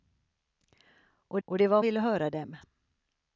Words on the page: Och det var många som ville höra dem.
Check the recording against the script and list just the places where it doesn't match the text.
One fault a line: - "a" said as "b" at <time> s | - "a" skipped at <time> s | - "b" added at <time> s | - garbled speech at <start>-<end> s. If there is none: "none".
- "och" added at 1.4 s
- "många som" skipped at 1.8 s